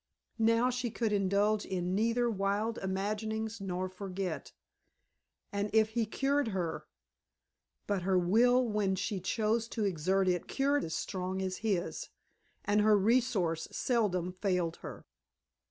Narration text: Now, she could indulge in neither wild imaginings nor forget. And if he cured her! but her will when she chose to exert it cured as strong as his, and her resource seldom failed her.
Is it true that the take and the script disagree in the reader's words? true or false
false